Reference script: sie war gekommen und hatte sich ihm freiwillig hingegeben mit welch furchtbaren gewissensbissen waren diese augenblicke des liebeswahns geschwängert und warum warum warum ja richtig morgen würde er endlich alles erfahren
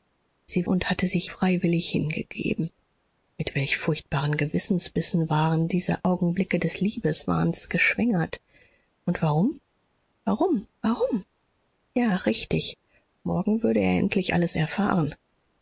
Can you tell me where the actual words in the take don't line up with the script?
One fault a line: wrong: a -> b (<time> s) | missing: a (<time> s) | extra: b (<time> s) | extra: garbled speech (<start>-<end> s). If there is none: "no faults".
missing: war gekommen (0.7 s)
missing: ihm (1.3 s)